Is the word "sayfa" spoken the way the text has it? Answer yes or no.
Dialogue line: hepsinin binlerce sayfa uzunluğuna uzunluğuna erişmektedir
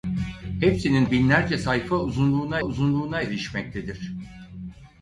yes